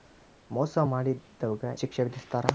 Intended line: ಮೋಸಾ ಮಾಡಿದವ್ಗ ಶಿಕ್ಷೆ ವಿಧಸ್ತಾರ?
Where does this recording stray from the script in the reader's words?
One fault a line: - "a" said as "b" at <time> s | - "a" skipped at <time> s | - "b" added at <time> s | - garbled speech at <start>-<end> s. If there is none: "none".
none